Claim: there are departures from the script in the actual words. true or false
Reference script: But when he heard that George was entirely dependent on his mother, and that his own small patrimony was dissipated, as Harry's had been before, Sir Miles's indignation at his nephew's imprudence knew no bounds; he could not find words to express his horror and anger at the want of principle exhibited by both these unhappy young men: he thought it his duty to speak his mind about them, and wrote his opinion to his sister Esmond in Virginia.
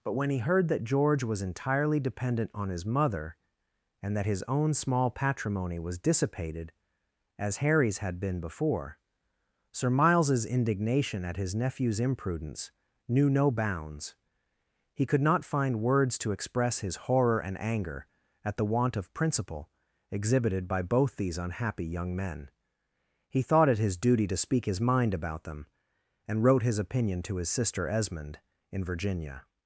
false